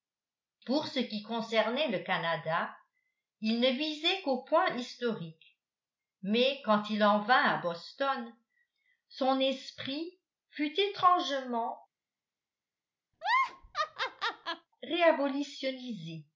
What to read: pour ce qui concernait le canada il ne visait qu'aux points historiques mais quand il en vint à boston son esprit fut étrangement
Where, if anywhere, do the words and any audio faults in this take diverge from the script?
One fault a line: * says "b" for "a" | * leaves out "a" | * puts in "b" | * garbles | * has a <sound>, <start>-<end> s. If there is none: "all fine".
* has a laugh, 13.1-14.7 s